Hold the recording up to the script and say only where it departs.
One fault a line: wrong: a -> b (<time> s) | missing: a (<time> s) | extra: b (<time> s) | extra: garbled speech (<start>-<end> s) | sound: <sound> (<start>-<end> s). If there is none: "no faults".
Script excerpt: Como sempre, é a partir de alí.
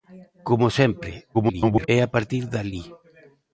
extra: garbled speech (1.3-1.9 s)